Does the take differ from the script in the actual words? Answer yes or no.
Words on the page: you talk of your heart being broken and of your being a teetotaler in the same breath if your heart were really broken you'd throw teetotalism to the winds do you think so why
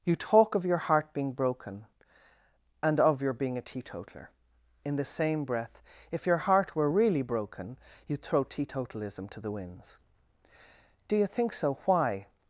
no